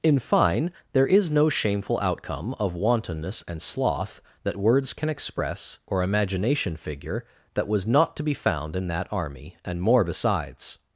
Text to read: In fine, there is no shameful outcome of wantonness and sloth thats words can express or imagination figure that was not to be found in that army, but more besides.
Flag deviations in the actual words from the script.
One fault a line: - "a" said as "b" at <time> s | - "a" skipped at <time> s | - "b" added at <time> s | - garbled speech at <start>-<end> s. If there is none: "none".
- "thats" said as "that" at 4.4 s
- "but" said as "and" at 9.6 s